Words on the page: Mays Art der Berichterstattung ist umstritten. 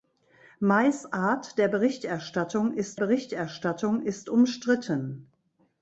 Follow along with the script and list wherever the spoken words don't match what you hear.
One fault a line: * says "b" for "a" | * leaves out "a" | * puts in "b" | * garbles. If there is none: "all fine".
* puts in "Berichterstattung ist"